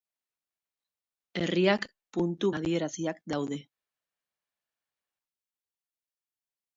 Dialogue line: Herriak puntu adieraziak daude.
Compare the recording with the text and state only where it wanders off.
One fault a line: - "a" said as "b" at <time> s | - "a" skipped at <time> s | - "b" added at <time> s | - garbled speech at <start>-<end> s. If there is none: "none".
none